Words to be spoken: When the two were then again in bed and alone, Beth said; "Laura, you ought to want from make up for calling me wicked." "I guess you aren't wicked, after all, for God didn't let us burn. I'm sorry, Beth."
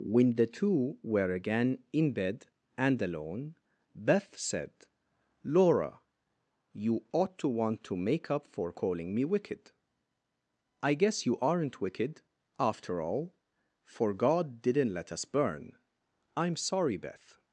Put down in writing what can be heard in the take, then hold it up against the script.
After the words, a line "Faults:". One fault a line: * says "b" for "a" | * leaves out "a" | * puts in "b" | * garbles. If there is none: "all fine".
When the two were again in bed and alone, Beth said; "Laura, you ought to want to make up for calling me wicked." "I guess you aren't wicked, after all, for God didn't let us burn. I'm sorry, Beth."
Faults:
* leaves out "then"
* says "to" for "from"